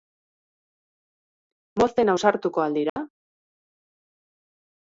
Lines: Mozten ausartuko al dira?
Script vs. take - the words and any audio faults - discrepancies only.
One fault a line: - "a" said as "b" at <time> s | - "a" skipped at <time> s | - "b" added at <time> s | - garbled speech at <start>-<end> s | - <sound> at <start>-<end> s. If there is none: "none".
- dropout at 2.9-3.0 s